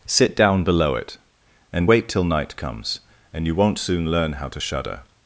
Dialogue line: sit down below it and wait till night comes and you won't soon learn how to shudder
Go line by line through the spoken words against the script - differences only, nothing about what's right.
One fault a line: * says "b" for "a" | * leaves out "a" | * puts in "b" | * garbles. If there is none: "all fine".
all fine